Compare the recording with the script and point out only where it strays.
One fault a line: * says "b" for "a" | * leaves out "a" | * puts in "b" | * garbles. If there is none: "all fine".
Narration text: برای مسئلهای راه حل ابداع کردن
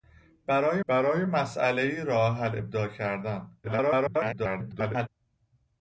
* puts in "برای"
* garbles